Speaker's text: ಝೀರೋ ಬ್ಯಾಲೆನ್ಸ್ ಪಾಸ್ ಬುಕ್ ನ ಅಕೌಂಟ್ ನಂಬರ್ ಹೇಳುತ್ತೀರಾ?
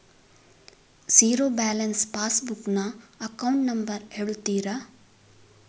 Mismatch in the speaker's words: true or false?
false